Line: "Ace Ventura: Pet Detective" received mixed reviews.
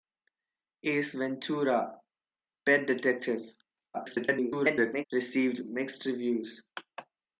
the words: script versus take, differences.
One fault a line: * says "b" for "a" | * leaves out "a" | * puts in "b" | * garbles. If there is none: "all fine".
* garbles